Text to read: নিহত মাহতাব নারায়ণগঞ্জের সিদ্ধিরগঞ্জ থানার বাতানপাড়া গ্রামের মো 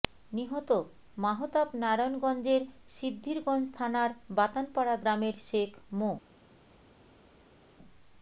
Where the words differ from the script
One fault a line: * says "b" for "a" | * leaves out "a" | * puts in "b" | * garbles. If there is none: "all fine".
* puts in "শেখ"